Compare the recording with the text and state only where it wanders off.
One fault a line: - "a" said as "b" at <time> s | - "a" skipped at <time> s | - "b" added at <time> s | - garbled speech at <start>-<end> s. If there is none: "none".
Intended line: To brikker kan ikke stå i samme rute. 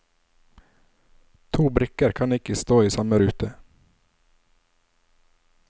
none